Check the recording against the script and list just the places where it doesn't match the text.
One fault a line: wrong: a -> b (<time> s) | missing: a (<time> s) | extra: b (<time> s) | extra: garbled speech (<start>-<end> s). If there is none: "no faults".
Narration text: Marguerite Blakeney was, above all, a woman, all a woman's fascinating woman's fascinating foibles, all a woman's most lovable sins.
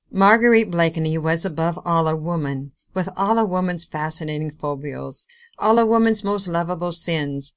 extra: with (2.9 s)
missing: woman's fascinating (4.5 s)